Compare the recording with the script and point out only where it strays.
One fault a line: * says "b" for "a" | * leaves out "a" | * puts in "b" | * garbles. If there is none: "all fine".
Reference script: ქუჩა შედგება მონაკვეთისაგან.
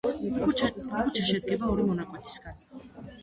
* puts in "ორი"